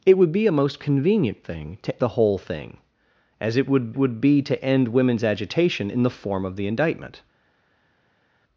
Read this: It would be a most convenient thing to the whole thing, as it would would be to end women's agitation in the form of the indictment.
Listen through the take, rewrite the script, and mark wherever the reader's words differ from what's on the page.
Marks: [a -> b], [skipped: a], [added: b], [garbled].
It would be a most convenient thing to the whole thing, as it would would be to end women's agitation in the form of the indictment.